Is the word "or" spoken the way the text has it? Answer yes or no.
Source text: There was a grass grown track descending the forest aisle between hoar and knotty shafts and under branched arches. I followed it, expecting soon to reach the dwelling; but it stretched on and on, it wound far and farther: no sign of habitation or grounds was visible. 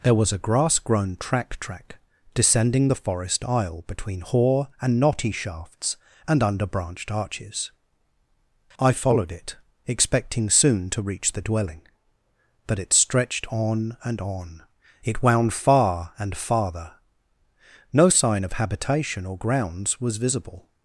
yes